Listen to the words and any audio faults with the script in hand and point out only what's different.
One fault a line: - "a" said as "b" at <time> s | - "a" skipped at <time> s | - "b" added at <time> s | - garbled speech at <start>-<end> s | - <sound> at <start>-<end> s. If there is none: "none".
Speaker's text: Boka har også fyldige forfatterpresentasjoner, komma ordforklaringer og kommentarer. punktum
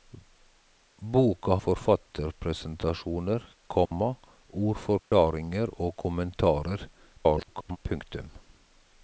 - "har også fyldige" skipped at 1.6 s
- dropout at 3.9-3.9 s
- dropout at 5.0-5.1 s
- garbled speech at 7.2-7.8 s